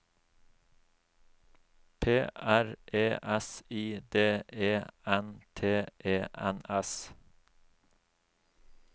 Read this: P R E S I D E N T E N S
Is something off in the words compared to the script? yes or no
no